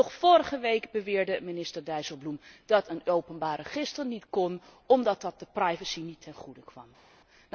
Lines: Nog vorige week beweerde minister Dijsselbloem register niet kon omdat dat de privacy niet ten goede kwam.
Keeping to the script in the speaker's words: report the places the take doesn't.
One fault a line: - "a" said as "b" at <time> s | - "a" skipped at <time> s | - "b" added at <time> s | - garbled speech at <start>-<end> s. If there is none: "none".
- "dat een openbaar" added at 2.6 s